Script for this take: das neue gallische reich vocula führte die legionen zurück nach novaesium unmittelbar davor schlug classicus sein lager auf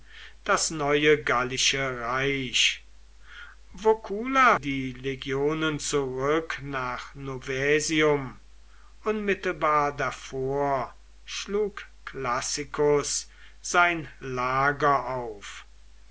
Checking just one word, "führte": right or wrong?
wrong